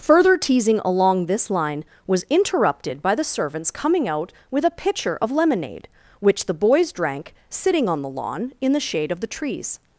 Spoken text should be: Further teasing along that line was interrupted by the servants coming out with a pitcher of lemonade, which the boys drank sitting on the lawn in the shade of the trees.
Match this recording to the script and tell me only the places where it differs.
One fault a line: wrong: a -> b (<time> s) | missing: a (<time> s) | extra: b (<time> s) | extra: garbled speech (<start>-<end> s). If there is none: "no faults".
wrong: that -> this (1.3 s)